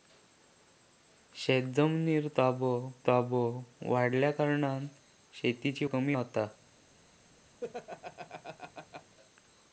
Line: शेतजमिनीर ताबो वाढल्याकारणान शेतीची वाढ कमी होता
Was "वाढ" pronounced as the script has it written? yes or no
no